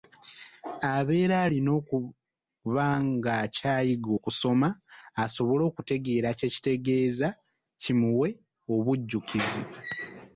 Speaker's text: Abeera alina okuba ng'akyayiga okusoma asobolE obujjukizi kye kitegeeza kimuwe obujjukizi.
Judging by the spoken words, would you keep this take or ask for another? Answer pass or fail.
fail